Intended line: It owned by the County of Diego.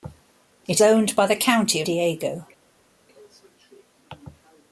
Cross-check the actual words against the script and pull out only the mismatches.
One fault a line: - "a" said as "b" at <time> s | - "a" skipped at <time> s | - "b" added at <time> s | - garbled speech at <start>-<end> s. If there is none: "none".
none